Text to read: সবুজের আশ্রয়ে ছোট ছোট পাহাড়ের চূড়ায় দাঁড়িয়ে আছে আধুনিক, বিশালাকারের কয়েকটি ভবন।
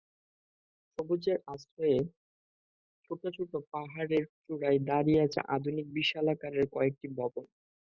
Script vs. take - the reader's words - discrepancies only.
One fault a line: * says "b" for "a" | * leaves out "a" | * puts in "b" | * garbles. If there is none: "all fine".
all fine